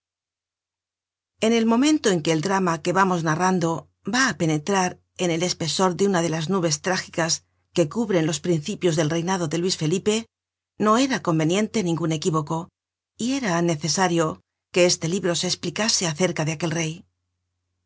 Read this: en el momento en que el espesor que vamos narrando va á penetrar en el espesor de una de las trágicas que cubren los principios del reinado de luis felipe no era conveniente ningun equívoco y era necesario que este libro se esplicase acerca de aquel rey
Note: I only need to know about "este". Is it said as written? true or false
true